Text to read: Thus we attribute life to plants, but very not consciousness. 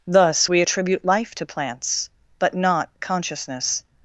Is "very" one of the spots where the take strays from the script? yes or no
yes